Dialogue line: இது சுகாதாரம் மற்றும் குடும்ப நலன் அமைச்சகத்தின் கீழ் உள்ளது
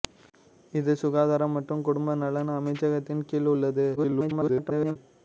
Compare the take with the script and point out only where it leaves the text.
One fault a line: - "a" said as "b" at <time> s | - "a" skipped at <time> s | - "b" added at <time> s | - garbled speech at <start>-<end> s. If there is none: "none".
- garbled speech at 4.0-5.0 s